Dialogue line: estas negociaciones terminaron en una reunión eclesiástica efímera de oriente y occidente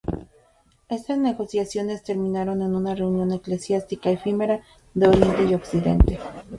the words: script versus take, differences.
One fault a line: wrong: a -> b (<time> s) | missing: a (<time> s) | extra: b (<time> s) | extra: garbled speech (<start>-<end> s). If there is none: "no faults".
no faults